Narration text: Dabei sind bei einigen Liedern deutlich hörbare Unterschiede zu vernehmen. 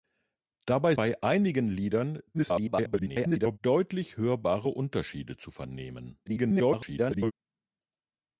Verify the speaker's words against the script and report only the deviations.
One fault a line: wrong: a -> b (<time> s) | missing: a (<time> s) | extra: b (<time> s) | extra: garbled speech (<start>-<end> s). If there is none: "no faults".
missing: sind (0.9 s)
extra: garbled speech (2.3-3.6 s)
extra: garbled speech (6.3-7.3 s)